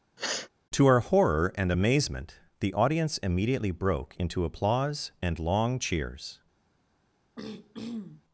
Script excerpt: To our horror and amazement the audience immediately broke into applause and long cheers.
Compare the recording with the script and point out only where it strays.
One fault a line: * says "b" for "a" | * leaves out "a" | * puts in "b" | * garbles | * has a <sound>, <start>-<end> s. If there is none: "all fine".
* has a sniff, 0.2-0.5 s
* has a throat clearing, 7.4-8.2 s